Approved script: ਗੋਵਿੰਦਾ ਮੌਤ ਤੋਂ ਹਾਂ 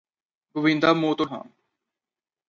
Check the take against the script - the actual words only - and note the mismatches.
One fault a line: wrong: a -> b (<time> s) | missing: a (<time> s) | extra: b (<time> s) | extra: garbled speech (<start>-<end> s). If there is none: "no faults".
no faults